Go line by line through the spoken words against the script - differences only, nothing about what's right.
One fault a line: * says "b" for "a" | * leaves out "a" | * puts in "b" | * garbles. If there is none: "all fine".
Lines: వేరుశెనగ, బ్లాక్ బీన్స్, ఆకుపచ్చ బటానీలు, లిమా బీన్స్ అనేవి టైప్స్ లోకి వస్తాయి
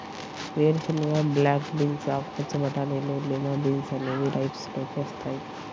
all fine